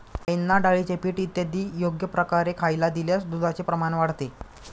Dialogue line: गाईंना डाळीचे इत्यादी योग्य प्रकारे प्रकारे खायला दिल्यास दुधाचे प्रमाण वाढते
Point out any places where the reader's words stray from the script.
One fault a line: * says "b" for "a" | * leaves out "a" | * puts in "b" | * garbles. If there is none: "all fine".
* puts in "पीठ"
* leaves out "प्रकारे"